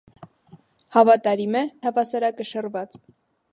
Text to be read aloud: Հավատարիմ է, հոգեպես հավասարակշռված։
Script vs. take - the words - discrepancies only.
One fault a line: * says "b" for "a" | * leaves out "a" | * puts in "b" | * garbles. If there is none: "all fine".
* leaves out "հոգեպես"